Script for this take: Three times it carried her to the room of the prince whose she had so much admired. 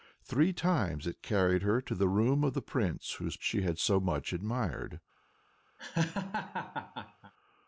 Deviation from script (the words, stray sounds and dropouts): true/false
true